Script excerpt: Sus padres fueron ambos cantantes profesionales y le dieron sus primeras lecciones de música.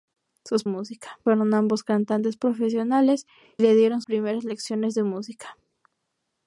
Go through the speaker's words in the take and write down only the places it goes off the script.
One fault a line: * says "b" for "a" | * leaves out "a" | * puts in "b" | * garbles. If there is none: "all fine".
* says "música" for "padres"
* leaves out "y"
* leaves out "sus"